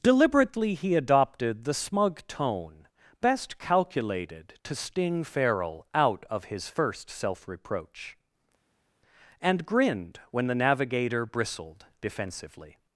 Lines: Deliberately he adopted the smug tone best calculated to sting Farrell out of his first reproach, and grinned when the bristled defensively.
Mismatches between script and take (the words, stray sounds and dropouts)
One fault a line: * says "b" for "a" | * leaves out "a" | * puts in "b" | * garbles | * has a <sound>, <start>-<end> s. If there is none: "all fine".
* puts in "self"
* puts in "navigator"